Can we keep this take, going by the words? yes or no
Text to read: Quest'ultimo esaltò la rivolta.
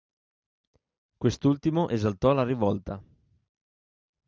yes